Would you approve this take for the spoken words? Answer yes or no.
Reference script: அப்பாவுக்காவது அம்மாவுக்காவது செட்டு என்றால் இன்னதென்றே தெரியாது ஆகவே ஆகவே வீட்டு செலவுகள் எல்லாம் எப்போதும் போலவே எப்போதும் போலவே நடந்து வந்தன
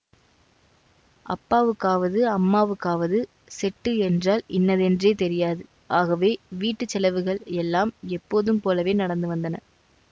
no